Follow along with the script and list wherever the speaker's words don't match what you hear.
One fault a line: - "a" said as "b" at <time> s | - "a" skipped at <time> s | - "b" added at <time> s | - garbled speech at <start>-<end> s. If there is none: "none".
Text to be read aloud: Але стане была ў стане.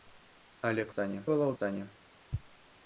none